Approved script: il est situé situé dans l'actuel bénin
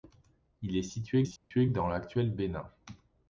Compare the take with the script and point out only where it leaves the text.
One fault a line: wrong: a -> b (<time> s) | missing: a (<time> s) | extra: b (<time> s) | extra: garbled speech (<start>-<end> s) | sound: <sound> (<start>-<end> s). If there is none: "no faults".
sound: dropout (1.4-1.5 s)